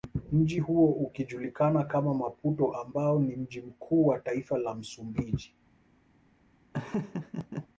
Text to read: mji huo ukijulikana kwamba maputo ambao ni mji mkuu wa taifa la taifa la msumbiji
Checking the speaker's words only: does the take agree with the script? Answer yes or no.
no